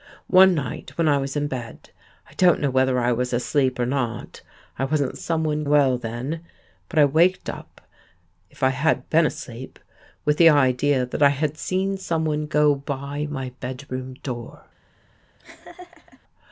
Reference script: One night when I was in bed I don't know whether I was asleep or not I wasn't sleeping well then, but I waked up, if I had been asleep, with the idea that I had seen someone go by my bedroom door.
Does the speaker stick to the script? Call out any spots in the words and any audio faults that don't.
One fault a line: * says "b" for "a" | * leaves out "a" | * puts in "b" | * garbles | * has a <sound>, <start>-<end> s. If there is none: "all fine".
* says "someone" for "sleeping"
* has a laugh, 15.4-16.2 s